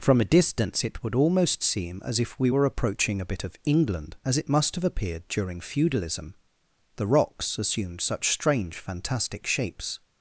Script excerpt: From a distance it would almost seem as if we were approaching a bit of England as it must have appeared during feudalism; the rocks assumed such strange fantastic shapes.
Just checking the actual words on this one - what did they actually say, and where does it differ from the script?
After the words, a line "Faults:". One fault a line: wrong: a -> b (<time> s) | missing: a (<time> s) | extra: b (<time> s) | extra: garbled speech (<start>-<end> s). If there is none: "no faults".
From a distance it would almost seem as if we were approaching a bit of England as it must have appeared during feudalism; the rocks assumed such strange fantastic shapes.
Faults:
no faults